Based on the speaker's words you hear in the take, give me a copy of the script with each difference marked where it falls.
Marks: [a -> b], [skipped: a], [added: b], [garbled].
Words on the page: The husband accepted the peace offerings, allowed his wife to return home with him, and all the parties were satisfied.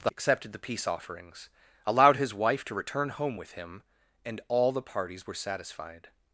The [skipped: husband] accepted the peace offerings, allowed his wife to return home with him, and all the parties were satisfied.